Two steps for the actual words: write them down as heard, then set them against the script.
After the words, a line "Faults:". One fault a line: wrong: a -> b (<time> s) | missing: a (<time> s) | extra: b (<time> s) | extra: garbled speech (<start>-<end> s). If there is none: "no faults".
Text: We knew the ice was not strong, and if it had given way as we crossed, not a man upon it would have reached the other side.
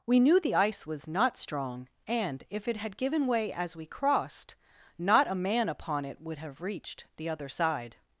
We knew the ice was not strong, and if it had given way as we crossed, not a man upon it would have reached the other side.
Faults:
no faults